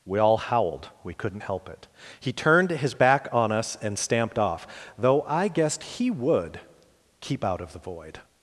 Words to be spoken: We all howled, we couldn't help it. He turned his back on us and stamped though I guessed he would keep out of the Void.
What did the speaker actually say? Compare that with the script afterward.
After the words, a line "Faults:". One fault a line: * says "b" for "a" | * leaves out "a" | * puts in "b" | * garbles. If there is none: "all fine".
We all howled, we couldn't help it. He turned his back on us and stamped off, though I guessed he would keep out of the Void.
Faults:
* puts in "off"